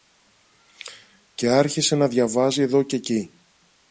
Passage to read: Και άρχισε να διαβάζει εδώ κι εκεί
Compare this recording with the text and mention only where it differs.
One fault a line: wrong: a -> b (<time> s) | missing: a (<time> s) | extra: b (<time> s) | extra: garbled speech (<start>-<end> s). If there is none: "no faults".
no faults